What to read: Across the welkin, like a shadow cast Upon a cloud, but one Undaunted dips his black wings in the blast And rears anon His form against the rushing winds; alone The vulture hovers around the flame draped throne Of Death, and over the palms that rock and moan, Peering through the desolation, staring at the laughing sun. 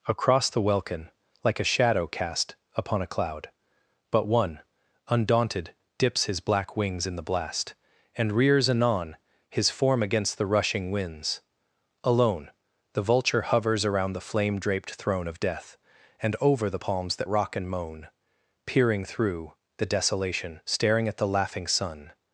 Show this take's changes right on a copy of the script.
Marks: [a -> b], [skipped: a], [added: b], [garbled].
Across the welkin, like a shadow cast Upon a cloud, but one Undaunted dips his black wings in the blast And rears anon His form against the rushing winds; alone The vulture hovers around the flame draped throne Of Death, and over the palms that rock and moan, Peering through the desolation, staring at the laughing sun.